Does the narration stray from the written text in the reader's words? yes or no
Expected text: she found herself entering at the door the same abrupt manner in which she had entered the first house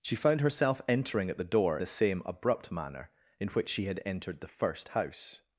no